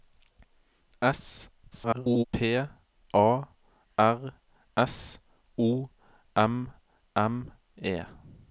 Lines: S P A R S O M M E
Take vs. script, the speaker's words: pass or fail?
fail